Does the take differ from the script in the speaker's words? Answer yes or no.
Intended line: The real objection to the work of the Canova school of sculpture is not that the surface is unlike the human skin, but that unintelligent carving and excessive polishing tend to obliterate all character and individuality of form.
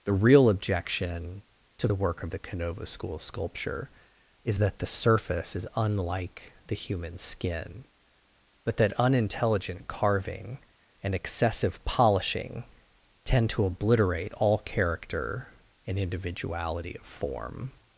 yes